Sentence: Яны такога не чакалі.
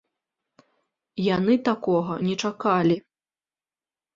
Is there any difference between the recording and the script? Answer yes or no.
no